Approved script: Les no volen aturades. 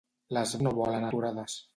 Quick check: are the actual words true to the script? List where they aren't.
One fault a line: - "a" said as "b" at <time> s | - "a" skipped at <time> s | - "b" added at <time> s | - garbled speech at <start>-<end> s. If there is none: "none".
none